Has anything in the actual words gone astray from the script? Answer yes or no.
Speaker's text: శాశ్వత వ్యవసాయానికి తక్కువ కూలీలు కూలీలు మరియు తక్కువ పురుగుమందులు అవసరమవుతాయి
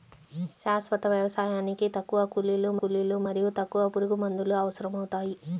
no